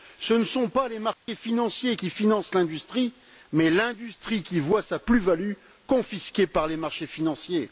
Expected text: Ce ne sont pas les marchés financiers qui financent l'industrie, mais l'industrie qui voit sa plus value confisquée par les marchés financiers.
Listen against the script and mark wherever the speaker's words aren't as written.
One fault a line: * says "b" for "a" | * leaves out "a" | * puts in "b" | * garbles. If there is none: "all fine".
all fine